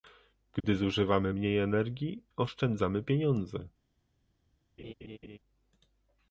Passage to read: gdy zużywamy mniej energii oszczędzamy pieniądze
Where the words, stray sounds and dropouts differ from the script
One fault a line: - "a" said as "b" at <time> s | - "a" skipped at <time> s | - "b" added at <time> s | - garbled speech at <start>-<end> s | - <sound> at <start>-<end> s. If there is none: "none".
- dropout at 0.6-0.6 s
- laugh at 4.8-5.4 s